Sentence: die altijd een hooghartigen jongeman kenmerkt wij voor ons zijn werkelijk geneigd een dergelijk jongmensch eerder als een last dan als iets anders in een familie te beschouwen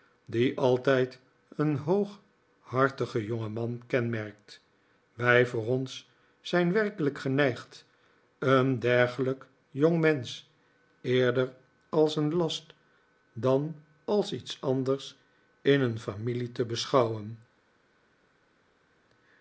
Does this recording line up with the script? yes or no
yes